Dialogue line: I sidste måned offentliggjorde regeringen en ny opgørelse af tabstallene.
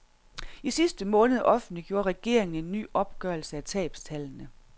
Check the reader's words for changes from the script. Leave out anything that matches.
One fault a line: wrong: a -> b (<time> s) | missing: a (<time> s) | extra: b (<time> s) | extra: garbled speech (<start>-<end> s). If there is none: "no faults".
no faults